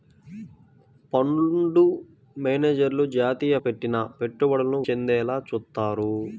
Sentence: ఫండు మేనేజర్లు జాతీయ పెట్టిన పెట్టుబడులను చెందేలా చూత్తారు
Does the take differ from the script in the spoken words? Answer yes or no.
no